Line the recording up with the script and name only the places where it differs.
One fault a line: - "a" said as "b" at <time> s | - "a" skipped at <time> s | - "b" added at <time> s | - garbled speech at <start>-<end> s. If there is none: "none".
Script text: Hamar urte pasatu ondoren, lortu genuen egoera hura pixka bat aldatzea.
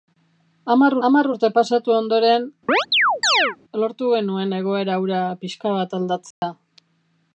- "hamar" added at 1.1 s